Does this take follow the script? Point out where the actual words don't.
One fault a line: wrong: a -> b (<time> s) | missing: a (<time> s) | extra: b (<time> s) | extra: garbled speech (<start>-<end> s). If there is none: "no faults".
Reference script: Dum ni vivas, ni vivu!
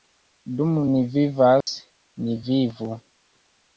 no faults